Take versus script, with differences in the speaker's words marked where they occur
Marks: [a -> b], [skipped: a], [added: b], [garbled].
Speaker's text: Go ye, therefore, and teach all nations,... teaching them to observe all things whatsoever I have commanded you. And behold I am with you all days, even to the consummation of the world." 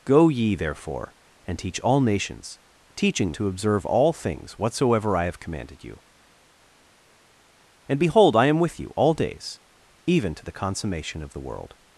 Go ye, therefore, and teach all nations,... teaching [skipped: them] to observe all things whatsoever I have commanded you. And behold I am with you all days, even to the consummation of the world."